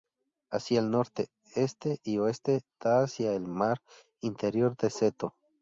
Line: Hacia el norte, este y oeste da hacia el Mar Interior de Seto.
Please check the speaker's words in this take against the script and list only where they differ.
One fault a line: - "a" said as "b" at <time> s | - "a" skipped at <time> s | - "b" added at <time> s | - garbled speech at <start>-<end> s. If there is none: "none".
none